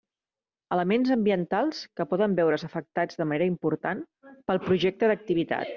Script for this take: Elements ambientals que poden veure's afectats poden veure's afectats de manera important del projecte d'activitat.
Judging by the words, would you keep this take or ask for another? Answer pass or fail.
fail